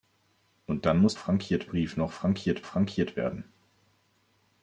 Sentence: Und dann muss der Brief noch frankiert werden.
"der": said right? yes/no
no